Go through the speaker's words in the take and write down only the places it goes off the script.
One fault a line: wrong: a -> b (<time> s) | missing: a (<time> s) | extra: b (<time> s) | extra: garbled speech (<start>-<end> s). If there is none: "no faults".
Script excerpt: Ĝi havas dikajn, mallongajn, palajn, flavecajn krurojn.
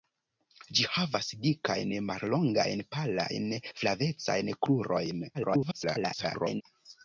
extra: garbled speech (5.3-6.6 s)